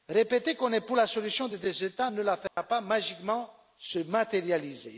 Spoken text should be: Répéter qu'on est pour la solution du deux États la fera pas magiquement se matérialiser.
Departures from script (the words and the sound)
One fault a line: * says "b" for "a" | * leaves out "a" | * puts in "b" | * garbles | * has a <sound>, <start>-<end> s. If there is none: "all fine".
* says "des" for "du"
* puts in "ne"
* has a dropout, 2.5-2.6 s